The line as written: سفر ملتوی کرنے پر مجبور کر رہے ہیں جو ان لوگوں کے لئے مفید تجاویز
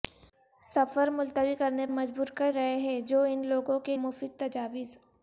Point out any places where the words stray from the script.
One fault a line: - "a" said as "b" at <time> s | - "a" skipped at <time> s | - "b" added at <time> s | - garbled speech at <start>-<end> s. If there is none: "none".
- "پر" skipped at 1.9 s
- "لئے" skipped at 4.0 s